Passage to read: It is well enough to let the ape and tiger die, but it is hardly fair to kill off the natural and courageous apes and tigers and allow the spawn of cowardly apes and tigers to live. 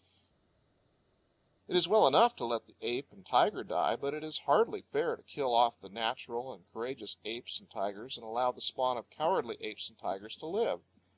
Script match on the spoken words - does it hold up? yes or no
yes